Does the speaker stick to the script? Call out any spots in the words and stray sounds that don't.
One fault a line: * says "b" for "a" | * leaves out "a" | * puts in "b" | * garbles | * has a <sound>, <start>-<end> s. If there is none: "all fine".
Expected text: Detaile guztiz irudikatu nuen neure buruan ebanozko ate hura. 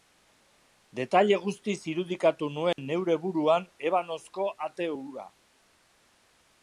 * has a dropout, 2.7-2.8 s